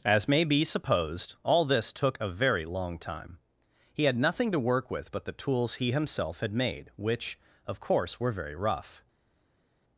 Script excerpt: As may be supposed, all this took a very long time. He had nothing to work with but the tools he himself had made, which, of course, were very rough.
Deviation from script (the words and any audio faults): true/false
false